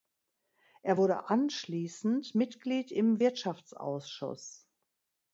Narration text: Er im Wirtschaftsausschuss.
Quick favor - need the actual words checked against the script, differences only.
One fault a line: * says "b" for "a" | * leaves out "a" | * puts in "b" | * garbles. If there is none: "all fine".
* puts in "wurde anschließend Mitglied"